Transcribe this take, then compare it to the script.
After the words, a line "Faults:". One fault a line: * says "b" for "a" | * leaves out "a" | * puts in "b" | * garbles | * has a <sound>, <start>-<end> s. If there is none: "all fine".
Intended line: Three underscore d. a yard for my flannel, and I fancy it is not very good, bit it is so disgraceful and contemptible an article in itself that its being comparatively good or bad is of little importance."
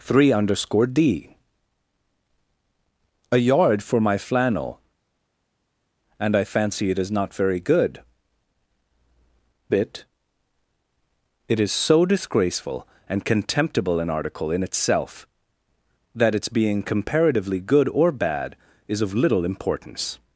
Three underscore d. a yard for my flannel, and I fancy it is not very good, bit it is so disgraceful and contemptible an article in itself that its being comparatively good or bad is of little importance."
Faults:
all fine